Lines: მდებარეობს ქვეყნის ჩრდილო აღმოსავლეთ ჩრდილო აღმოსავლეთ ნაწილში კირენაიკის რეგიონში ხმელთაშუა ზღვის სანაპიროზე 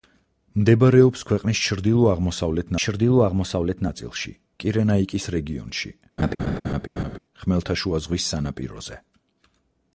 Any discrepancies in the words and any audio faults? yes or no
yes